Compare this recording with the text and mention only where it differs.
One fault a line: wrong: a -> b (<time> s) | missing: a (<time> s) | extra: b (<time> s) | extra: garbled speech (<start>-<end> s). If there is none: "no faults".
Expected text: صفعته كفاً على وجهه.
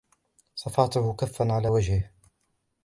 no faults